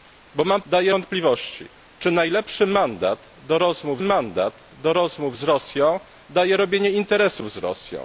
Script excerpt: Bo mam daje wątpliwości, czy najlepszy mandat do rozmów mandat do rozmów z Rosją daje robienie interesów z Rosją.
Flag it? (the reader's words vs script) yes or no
no